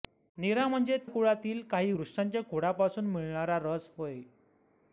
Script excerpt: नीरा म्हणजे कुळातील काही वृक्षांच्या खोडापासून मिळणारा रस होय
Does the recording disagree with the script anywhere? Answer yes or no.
no